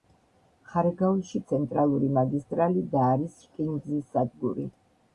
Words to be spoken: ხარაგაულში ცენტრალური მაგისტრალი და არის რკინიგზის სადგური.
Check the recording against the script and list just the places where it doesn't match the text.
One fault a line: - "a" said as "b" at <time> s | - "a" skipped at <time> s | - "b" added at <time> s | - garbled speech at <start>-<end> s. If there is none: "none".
none